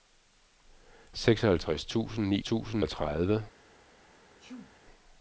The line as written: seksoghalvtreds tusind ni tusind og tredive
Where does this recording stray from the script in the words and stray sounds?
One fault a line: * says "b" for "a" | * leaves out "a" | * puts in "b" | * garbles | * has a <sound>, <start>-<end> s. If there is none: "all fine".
* has a sneeze, 4.4-4.8 s